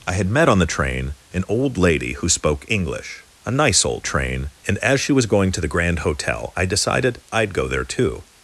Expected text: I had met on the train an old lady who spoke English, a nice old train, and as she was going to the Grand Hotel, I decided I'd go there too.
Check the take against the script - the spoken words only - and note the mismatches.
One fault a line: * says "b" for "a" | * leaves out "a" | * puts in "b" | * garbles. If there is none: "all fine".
all fine